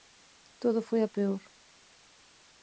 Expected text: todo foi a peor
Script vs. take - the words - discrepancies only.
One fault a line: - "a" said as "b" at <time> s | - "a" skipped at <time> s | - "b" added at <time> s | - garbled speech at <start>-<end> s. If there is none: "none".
none